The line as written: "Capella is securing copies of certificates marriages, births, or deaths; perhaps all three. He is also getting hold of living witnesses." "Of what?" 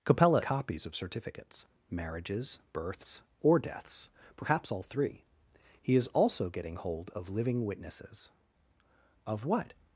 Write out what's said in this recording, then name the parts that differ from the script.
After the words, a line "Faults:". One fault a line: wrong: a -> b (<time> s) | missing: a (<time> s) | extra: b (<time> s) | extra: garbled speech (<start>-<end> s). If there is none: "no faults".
"Capella copies of certificates marriages, births, or deaths; perhaps all three. He is also getting hold of living witnesses." "Of what?"
Faults:
missing: is securing (0.4 s)